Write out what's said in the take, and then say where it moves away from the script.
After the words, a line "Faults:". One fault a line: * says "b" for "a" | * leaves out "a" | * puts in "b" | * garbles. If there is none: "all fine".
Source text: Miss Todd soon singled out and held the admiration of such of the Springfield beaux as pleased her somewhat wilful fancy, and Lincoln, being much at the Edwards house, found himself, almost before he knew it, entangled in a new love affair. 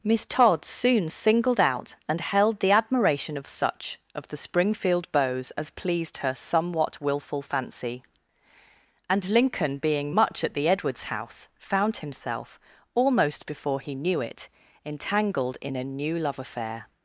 Miss Todd soon singled out and held the admiration of such of the Springfield beaux as pleased her somewhat wilful fancy, and Lincoln, being much at the Edwards house, found himself, almost before he knew it, entangled in a new love affair.
Faults:
all fine